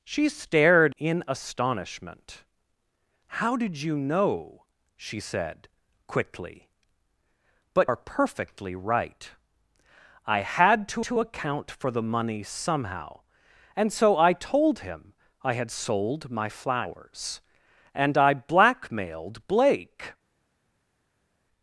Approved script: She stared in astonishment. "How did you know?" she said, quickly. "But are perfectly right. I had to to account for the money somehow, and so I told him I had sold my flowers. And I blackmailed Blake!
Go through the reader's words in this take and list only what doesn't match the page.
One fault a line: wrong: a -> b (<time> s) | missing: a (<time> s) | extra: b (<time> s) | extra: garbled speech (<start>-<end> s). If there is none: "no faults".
no faults